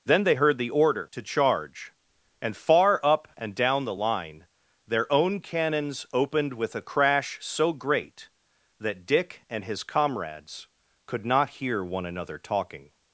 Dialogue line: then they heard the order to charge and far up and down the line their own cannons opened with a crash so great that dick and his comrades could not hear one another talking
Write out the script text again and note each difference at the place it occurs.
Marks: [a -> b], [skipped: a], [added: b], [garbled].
then they heard the order to charge and far up and down the line their own cannons opened with a crash so great that dick and his comrades could not hear one another talking